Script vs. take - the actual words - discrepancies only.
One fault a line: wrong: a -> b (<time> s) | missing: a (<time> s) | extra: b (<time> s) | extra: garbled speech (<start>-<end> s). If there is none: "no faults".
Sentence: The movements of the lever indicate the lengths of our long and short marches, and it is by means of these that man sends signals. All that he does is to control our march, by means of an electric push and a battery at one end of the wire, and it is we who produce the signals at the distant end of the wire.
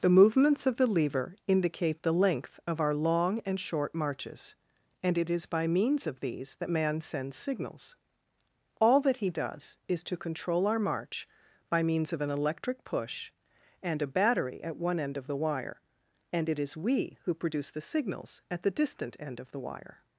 wrong: lengths -> length (2.1 s)